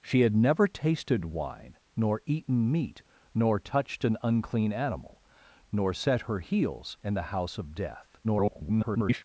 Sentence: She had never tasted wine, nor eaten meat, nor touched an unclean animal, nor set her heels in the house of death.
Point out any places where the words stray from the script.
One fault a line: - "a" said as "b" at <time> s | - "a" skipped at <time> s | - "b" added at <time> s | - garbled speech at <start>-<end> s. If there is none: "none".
- garbled speech at 8.2-9.2 s